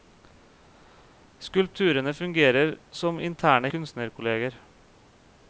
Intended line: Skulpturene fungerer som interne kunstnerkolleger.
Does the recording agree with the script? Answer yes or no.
yes